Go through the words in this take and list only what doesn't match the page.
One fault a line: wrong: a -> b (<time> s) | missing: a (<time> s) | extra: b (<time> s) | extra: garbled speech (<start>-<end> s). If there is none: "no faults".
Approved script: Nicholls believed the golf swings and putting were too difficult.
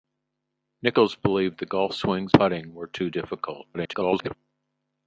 missing: and (2.4 s)
extra: garbled speech (3.7-4.4 s)